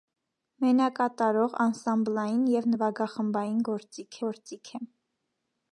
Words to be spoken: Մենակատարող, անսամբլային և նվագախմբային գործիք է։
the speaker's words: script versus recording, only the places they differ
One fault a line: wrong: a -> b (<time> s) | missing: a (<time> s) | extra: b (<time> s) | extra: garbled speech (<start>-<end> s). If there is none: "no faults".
extra: գործիք (4.3 s)